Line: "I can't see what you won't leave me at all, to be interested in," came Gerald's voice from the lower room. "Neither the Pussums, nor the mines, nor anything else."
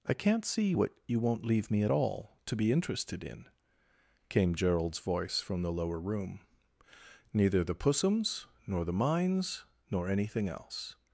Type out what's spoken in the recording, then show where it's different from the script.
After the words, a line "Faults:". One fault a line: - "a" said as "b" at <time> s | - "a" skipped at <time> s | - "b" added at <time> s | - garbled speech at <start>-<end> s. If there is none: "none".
"I can't see what you won't leave me at all, to be interested in," came Gerald's voice from the lower room. "Neither the Pussums, nor the mines, nor anything else."
Faults:
none